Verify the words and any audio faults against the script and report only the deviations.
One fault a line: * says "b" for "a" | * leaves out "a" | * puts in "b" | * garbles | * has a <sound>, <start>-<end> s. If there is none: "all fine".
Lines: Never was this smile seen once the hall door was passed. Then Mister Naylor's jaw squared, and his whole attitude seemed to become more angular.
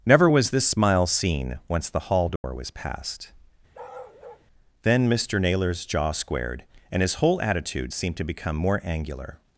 * has a dropout, 2.4-2.4 s
* has a bark, 3.7-4.5 s